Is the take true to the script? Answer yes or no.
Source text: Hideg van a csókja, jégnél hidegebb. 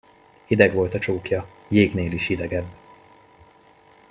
no